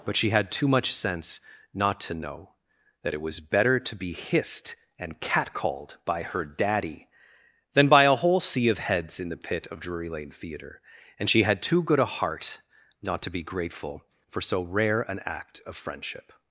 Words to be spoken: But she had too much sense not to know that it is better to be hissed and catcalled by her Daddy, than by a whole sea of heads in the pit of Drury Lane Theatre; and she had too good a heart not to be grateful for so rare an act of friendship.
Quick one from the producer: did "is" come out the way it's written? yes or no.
no